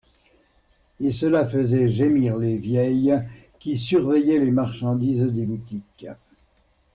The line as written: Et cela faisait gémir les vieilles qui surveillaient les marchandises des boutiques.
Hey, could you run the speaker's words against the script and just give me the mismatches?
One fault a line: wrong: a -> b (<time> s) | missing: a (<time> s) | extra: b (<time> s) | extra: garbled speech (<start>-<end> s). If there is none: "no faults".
no faults